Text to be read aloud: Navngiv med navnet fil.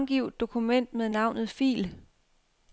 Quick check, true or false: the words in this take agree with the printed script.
false